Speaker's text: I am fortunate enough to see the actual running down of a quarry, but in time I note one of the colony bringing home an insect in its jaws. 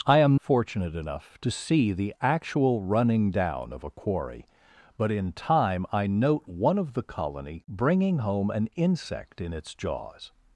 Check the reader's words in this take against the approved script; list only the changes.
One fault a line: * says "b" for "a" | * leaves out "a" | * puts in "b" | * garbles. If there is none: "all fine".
all fine